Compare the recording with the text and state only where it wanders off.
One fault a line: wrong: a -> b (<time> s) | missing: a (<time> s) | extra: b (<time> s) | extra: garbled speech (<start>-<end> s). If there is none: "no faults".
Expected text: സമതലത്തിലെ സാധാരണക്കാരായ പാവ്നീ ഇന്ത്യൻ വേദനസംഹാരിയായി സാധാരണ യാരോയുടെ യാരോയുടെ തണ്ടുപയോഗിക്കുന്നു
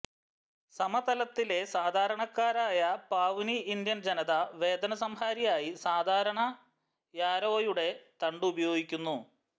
extra: ജനത (4.0 s)
missing: യാരോയുടെ (7.9 s)